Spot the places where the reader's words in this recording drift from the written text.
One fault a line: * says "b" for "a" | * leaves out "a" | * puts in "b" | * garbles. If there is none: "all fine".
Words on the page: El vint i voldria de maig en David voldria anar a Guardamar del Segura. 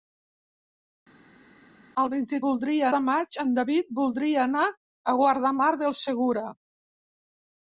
all fine